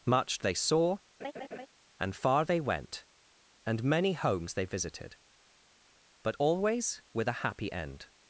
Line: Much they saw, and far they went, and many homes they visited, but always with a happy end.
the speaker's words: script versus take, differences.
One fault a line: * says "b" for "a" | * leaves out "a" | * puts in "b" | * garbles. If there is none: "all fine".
all fine